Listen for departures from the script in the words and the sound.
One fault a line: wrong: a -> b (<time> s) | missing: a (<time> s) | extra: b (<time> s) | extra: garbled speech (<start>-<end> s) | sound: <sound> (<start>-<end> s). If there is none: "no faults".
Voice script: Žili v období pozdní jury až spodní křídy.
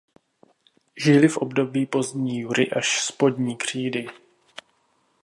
no faults